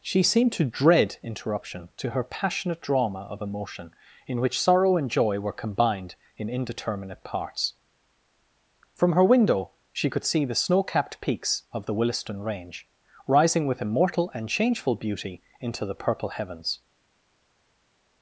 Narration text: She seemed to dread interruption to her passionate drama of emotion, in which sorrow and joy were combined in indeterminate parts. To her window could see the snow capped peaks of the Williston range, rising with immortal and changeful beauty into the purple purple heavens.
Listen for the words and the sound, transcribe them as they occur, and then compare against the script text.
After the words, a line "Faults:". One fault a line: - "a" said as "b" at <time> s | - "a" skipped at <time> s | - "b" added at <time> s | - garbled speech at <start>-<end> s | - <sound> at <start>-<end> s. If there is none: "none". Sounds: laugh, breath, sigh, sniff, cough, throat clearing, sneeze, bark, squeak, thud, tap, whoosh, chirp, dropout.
She seemed to dread interruption to her passionate drama of emotion, in which sorrow and joy were combined in indeterminate parts. From her window she could see the snow capped peaks of the Williston range, rising with immortal and changeful beauty into the purple heavens.
Faults:
- "To" said as "From" at 8.9 s
- "she" added at 9.9 s
- "purple" skipped at 16.3 s